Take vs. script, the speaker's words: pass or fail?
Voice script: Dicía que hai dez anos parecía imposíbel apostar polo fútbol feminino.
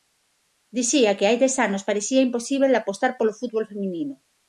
pass